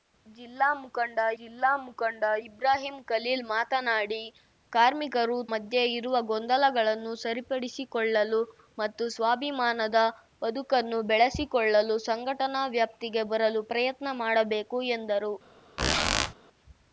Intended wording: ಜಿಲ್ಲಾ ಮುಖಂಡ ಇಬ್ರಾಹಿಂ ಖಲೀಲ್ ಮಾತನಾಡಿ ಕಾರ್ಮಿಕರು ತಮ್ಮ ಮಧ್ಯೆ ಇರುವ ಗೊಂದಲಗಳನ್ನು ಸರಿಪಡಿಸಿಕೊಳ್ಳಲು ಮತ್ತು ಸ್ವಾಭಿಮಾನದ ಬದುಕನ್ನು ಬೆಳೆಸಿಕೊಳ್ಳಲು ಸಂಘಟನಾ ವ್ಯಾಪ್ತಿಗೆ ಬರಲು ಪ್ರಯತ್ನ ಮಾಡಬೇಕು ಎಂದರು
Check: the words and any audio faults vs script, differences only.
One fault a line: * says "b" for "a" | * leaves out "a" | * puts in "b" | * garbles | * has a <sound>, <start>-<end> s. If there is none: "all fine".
* puts in "ಜಿಲ್ಲಾ ಮುಖಂಡ"
* leaves out "ತಮ್ಮ"
* has a squeak, 15.8-16.3 s